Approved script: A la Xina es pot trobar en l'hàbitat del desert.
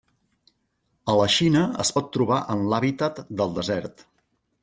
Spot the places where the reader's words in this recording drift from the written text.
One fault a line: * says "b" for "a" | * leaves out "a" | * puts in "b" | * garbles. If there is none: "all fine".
all fine